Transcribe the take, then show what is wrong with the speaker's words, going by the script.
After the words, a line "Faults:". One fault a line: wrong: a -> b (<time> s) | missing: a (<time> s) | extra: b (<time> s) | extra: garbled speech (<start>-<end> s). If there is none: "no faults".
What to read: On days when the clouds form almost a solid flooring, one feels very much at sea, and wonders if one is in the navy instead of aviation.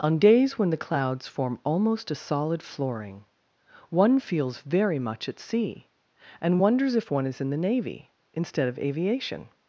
On days when the clouds form almost a solid flooring, one feels very much at sea, and wonders if one is in the navy instead of aviation.
Faults:
no faults